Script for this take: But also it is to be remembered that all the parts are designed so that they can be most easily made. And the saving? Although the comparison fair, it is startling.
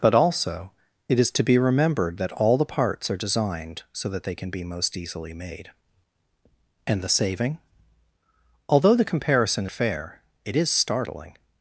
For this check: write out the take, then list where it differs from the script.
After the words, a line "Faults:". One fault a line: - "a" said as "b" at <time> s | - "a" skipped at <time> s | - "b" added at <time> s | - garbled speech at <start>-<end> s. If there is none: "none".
But also it is to be remembered that all the parts are designed so that they can be most easily made. And the saving? Although the comparison fair, it is startling.
Faults:
none